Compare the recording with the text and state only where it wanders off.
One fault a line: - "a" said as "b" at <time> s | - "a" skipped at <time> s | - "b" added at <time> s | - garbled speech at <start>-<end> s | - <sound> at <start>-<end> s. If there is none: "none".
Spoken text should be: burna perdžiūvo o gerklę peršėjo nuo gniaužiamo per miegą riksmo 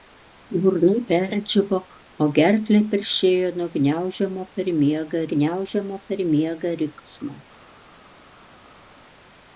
- "gniaužiamo per miegą" added at 5.3 s